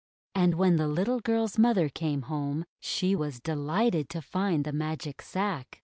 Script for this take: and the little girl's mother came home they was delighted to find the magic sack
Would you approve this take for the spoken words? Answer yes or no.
no